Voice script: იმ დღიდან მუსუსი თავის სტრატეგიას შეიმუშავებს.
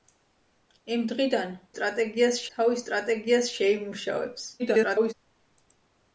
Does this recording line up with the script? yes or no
no